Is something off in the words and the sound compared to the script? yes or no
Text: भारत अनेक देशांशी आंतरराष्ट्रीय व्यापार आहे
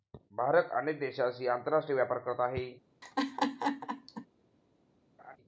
yes